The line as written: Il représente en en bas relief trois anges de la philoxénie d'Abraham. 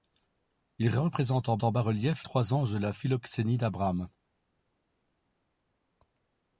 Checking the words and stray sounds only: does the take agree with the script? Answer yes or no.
yes